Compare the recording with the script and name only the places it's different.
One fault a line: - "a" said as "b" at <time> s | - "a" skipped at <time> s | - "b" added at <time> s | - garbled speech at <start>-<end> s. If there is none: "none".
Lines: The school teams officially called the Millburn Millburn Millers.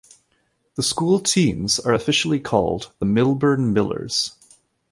- "are" added at 1.8 s
- "Millburn" skipped at 3.7 s